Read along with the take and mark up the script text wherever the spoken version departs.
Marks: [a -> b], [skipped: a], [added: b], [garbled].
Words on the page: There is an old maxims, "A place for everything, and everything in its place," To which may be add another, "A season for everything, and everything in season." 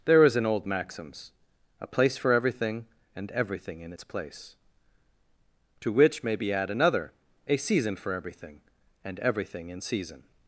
There is an old maxims, "A place for everything, and everything in its place," To which may be add another, "A season for everything, and everything in season."